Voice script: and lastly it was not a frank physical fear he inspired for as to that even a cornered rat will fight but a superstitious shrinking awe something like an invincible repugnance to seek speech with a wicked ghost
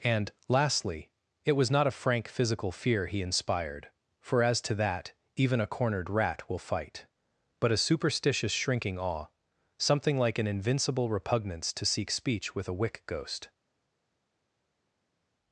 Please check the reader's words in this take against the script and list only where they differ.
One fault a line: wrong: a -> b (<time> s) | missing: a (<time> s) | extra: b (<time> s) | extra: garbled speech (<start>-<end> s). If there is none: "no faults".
wrong: wicked -> wick (12.7 s)